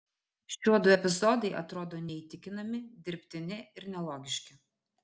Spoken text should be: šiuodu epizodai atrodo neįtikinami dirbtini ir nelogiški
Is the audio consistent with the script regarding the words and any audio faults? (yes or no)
yes